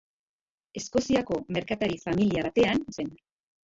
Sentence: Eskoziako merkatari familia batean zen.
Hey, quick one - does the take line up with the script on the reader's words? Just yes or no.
yes